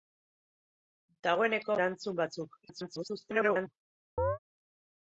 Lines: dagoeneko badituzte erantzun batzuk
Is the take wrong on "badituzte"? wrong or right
wrong